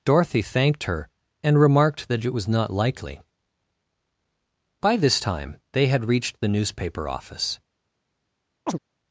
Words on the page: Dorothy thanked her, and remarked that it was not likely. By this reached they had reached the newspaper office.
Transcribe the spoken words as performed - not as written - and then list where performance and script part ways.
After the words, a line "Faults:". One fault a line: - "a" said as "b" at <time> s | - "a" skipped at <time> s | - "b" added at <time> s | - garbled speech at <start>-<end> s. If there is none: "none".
Dorothy thanked her, and remarked that it was not likely. By this time they had reached the newspaper office.
Faults:
- "reached" said as "time" at 5.2 s